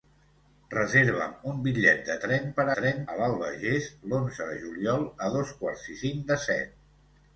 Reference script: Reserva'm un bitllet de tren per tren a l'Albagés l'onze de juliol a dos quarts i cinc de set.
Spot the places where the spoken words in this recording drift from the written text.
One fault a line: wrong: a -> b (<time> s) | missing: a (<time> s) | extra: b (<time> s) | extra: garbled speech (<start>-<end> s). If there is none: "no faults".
no faults